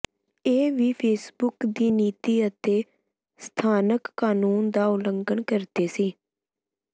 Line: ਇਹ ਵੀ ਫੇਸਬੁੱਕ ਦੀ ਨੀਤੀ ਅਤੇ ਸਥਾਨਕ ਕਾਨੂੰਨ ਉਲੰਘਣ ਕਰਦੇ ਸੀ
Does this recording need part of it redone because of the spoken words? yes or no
yes